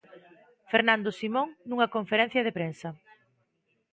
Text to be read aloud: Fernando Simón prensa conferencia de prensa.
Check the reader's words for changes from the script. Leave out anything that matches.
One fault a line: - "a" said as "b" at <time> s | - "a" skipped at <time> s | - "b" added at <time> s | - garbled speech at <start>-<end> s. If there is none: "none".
- "prensa" said as "nunha" at 1.7 s